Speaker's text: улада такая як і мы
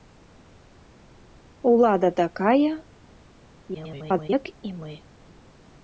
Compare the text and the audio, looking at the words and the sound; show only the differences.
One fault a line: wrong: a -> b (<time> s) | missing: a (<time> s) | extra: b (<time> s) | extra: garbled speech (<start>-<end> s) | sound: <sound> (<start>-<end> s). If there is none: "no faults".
extra: garbled speech (3.7-4.3 s)